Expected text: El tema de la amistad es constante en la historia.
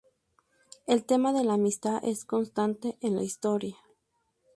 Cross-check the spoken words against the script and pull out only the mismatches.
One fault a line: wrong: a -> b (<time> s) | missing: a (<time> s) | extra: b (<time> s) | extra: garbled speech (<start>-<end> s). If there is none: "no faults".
no faults